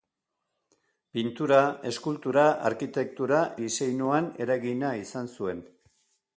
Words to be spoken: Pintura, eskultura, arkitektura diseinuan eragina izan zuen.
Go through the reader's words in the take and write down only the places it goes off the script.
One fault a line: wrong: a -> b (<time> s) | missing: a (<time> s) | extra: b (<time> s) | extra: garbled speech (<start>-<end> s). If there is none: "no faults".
no faults